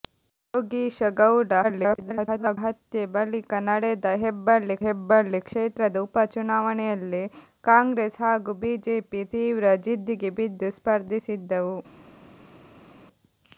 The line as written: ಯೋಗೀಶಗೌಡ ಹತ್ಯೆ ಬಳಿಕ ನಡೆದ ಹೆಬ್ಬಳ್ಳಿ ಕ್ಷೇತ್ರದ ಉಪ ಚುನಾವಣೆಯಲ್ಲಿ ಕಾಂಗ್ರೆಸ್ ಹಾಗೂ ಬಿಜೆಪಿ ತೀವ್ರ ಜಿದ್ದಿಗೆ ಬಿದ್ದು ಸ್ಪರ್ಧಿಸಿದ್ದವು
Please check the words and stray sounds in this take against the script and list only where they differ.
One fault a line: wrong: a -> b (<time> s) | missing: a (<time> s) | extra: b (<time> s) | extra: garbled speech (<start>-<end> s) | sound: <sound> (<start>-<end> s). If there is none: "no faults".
extra: garbled speech (1.6-2.6 s)
extra: ಹೆಬ್ಬಳ್ಳಿ (4.8 s)